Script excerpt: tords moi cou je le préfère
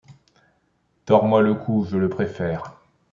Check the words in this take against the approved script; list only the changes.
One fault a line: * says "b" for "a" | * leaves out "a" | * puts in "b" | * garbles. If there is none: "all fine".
* puts in "le"